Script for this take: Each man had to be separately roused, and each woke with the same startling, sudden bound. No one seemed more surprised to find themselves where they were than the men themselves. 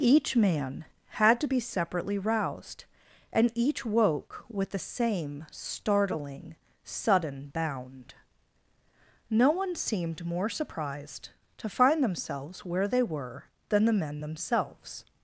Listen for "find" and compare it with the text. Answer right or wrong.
right